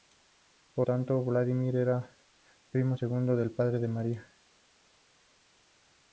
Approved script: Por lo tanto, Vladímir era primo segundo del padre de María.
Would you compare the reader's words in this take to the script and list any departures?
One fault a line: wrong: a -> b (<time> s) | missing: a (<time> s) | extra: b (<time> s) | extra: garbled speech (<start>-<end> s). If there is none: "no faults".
missing: lo (0.9 s)